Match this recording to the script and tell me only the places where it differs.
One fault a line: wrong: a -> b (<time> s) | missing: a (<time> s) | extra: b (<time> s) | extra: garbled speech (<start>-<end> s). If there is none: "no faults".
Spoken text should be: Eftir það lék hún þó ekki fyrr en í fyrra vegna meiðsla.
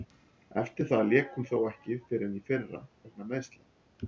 no faults